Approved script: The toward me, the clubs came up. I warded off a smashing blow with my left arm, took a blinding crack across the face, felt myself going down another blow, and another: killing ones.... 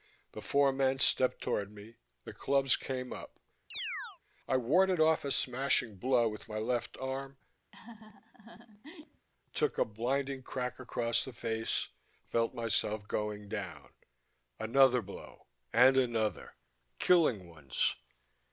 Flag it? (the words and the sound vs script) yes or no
yes